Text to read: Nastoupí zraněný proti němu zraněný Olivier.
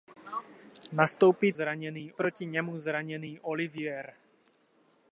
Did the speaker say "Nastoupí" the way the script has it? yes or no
yes